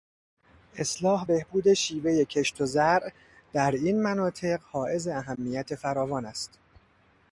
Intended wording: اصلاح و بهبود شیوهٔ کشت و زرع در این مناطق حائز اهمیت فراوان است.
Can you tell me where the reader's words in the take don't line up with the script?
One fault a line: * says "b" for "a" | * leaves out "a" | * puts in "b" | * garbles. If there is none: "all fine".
* leaves out "و"